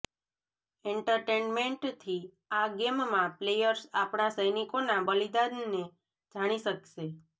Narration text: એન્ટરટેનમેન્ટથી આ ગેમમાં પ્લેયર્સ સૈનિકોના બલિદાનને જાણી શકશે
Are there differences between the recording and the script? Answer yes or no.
yes